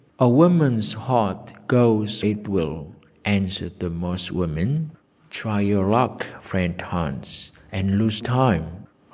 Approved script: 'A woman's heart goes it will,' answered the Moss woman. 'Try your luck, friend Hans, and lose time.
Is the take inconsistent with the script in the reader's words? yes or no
no